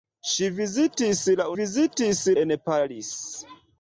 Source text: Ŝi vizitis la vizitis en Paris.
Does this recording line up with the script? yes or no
yes